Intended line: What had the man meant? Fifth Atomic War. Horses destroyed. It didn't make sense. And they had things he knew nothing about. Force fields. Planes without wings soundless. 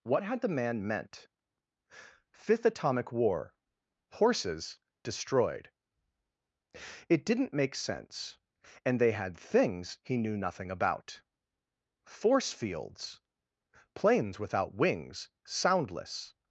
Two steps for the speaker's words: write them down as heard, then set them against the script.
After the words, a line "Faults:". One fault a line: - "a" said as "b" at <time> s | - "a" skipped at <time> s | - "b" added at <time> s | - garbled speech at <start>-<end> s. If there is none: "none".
What had the man meant? Fifth Atomic War. Horses destroyed. It didn't make sense. And they had things he knew nothing about. Force fields. Planes without wings soundless.
Faults:
none